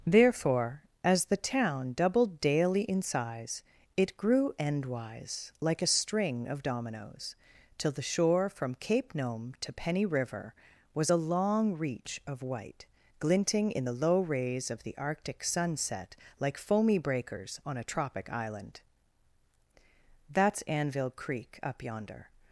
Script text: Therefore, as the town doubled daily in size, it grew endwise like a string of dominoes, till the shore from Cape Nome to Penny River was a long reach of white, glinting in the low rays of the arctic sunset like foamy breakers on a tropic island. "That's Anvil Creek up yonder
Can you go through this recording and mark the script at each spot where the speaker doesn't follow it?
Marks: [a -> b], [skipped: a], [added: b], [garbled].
Therefore, as the town doubled daily in size, it grew endwise like a string of dominoes, till the shore from Cape Nome to Penny River was a long reach of white, glinting in the low rays of the arctic sunset like foamy breakers on a tropic island. "That's Anvil Creek up yonder